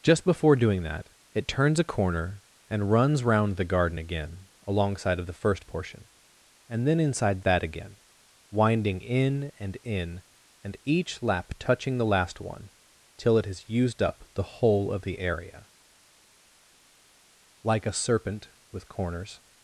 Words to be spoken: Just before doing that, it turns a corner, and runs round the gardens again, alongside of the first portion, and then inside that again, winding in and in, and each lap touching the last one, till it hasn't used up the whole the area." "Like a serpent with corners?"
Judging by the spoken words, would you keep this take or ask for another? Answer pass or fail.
fail